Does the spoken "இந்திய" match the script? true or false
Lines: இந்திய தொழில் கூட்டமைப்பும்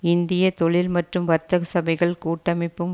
true